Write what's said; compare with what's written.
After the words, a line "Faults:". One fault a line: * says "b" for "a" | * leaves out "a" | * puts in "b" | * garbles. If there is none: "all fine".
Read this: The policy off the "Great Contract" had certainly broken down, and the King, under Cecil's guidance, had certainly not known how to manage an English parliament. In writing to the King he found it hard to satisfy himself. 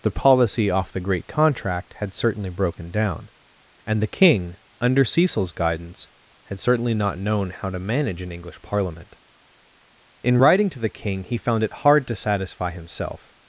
The policy off the "Great Contract" had certainly broken down, and the King, under Cecil's guidance, had certainly not known how to manage an English parliament. In writing to the King he found it hard to satisfy himself.
Faults:
all fine